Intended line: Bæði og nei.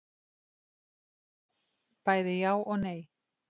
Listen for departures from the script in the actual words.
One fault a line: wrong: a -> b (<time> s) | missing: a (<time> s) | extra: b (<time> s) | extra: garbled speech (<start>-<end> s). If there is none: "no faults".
extra: já (2.4 s)